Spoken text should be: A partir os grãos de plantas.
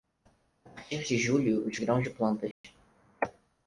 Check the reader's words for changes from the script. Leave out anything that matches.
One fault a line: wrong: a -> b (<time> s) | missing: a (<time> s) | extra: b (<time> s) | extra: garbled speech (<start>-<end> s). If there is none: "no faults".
extra: de julho (1.0 s)